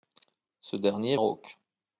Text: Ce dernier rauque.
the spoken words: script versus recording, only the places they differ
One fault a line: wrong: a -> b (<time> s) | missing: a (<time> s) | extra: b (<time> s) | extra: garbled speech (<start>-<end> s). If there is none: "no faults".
no faults